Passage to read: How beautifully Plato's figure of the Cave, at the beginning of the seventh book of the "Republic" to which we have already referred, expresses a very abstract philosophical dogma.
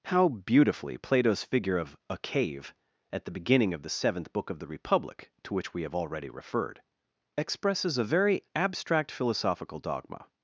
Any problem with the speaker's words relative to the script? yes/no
yes